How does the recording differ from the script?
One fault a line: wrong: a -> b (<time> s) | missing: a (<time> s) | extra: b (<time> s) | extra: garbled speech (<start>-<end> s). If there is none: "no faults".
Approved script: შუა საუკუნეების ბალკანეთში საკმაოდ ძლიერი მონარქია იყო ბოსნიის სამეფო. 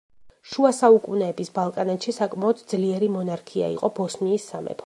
no faults